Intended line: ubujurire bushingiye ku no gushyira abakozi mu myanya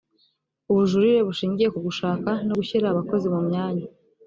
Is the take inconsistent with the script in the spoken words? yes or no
yes